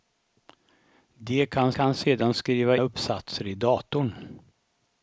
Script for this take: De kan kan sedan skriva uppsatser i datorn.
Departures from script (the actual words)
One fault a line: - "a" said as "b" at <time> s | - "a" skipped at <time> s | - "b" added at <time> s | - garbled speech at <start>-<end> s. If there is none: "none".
none